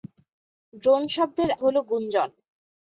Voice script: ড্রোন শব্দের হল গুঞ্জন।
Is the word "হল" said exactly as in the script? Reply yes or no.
yes